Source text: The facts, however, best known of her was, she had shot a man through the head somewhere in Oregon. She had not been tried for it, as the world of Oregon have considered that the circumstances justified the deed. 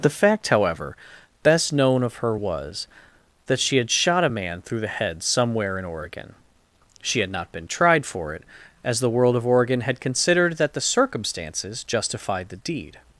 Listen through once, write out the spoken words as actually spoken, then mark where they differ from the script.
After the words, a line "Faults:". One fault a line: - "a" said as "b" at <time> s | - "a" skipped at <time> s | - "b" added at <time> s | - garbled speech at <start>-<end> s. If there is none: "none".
The fact, however, best known of her was, that she had shot a man through the head somewhere in Oregon. She had not been tried for it, as the world of Oregon had considered that the circumstances justified the deed.
Faults:
- "facts" said as "fact" at 0.1 s
- "that" added at 3.5 s
- "have" said as "had" at 9.8 s